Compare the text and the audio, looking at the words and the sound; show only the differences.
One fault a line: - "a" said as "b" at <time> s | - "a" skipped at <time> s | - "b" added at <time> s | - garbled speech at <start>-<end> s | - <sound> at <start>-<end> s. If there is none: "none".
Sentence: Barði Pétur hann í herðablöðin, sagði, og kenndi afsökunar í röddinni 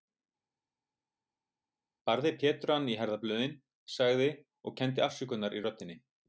none